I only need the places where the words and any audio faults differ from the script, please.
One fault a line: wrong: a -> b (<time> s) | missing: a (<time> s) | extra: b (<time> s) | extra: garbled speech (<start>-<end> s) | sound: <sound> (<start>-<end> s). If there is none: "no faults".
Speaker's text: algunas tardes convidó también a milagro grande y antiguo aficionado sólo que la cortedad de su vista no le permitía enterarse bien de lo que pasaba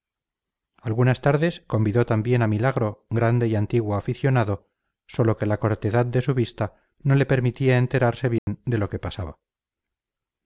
sound: dropout (8.4-8.5 s)